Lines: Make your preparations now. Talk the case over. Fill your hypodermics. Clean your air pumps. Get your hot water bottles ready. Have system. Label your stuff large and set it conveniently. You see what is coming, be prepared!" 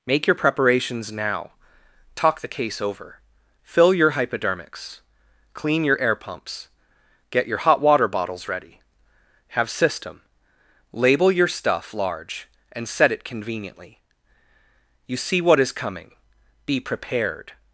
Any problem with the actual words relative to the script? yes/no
no